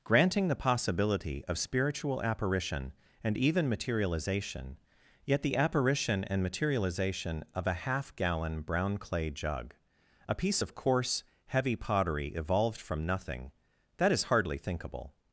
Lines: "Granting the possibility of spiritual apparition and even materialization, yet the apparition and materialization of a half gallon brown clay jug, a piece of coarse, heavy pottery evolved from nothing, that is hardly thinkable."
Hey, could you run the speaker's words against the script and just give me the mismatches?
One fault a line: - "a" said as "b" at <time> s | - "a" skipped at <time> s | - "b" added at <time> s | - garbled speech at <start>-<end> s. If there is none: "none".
none